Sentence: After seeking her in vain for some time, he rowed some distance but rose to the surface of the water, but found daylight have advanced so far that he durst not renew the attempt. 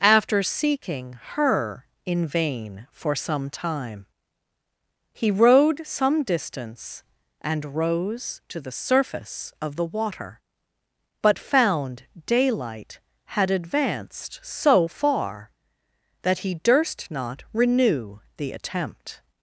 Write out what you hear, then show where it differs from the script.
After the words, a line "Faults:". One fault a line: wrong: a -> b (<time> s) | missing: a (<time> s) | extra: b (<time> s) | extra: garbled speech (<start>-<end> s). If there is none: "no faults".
After seeking her in vain for some time, he rowed some distance and rose to the surface of the water, but found daylight had advanced so far that he durst not renew the attempt.
Faults:
wrong: but -> and (7.4 s)
wrong: have -> had (13.2 s)